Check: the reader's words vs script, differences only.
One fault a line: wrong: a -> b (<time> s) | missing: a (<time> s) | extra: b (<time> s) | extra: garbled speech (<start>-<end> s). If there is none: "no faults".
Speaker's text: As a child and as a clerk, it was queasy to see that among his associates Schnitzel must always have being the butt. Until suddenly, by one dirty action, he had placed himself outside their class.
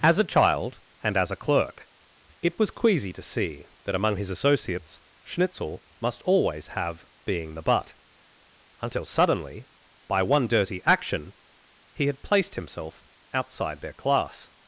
no faults